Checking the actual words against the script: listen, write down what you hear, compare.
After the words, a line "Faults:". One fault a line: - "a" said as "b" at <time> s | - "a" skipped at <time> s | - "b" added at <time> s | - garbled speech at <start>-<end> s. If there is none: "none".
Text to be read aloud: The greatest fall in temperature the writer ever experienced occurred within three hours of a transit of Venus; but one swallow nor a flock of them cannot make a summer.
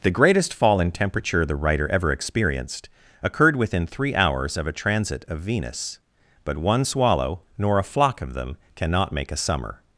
The greatest fall in temperature the writer ever experienced occurred within three hours of a transit of Venus; but one swallow nor a flock of them cannot make a summer.
Faults:
none